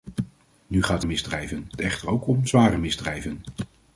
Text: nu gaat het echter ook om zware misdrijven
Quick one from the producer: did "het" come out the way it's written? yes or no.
no